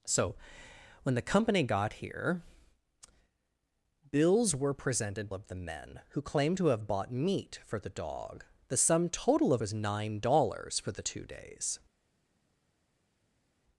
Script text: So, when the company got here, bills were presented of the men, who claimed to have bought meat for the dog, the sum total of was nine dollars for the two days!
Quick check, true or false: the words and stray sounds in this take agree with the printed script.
true